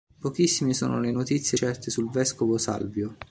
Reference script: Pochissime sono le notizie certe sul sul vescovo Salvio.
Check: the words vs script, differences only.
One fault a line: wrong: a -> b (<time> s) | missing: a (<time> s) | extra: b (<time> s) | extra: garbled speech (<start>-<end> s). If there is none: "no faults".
missing: sul (2.1 s)